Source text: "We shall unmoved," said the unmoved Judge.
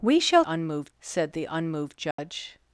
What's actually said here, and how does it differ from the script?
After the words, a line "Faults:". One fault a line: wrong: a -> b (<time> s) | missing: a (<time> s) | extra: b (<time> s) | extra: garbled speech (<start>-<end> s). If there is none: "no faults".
"We shall unmoved," said the unmoved Judge.
Faults:
no faults